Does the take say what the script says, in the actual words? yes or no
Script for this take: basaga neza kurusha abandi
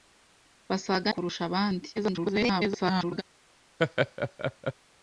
no